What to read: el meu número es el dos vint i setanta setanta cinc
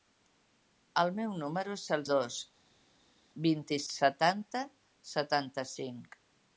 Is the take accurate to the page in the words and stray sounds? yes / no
yes